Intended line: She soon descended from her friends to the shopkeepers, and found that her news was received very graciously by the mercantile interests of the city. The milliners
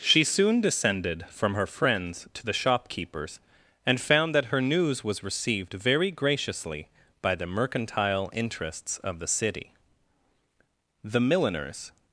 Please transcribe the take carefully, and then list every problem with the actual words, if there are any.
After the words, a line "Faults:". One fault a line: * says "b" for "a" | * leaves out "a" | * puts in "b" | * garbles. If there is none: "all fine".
She soon descended from her friends to the shopkeepers, and found that her news was received very graciously by the mercantile interests of the city. The milliners
Faults:
all fine